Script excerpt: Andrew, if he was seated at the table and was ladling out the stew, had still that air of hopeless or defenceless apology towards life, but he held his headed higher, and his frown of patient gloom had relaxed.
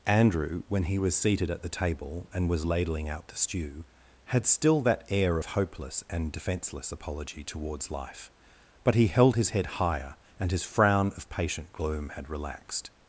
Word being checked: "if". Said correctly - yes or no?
no